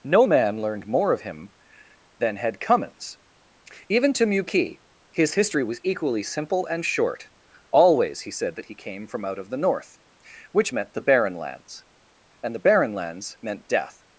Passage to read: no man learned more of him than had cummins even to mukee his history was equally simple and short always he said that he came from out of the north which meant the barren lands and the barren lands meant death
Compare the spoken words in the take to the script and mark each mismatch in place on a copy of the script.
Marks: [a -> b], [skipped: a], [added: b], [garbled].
no man learned more of him than had cummins even to mukee his history was equally simple and short always he said that he came from out of the north which meant the barren lands and the barren lands meant death